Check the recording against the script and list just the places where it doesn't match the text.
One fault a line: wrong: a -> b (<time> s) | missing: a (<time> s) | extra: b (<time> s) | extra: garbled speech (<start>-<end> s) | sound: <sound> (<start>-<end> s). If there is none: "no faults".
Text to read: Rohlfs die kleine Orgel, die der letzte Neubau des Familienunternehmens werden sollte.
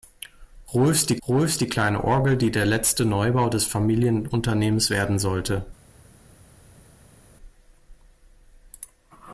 extra: rohlfs die (1.3 s)